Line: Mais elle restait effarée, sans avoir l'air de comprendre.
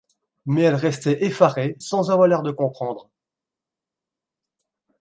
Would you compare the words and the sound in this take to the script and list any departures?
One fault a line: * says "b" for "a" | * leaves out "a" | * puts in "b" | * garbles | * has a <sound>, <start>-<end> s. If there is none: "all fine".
all fine